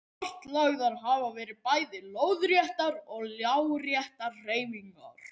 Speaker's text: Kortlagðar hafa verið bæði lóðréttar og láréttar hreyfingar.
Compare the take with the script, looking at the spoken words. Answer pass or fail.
pass